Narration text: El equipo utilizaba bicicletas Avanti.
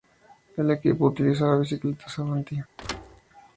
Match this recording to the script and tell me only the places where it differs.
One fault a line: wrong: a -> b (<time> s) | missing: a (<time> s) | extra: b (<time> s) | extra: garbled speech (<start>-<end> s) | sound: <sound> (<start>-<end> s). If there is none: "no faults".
sound: thud (2.8-3.2 s)